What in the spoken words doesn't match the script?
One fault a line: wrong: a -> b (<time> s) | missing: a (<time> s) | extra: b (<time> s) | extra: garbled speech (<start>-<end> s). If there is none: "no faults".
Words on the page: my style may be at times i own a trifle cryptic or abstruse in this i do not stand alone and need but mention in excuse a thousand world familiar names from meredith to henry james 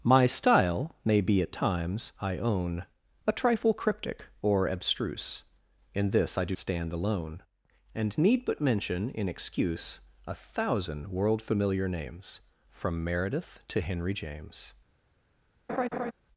missing: not (6.5 s)